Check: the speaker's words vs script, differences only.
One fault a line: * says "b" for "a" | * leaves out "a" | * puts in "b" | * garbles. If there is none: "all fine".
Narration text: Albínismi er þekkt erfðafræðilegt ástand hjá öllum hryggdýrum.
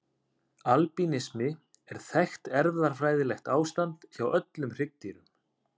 all fine